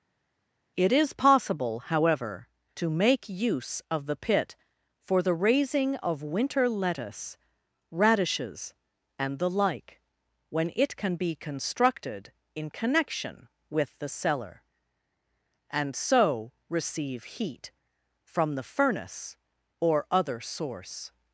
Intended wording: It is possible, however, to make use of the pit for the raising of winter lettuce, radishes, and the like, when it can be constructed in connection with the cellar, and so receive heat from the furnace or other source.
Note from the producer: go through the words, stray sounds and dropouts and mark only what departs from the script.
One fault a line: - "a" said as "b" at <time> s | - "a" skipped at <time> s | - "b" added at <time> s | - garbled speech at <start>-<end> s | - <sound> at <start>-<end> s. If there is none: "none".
none